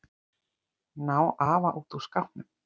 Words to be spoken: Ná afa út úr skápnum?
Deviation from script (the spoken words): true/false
false